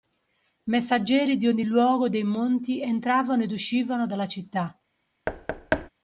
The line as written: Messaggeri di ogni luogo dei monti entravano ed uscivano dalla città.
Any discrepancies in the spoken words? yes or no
no